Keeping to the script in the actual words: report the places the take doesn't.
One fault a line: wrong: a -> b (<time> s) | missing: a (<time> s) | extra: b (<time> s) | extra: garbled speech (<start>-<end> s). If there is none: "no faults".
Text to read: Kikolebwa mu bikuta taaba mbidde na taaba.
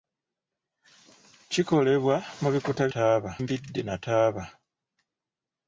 no faults